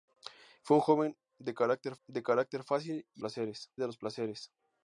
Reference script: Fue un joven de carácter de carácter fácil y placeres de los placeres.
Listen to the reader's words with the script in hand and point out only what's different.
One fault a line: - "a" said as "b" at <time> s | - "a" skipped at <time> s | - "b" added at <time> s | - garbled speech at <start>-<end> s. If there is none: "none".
none